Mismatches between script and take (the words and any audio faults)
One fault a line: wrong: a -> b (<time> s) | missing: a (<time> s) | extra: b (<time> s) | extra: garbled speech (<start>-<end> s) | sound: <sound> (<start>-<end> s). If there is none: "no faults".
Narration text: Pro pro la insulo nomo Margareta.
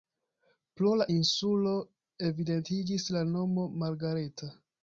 missing: pro (0.9 s)
extra: evidentiĝis la (2.3 s)